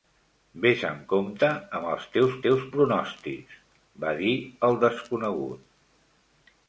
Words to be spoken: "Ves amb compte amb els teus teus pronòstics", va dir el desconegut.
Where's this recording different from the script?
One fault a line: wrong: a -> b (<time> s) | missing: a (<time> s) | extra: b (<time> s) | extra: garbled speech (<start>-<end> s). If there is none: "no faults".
no faults